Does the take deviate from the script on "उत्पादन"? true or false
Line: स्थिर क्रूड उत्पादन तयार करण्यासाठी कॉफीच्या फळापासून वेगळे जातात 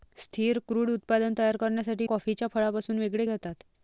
false